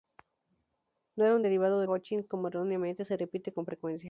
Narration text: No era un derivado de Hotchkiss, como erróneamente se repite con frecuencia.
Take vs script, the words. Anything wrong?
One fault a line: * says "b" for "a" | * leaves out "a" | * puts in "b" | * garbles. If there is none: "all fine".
all fine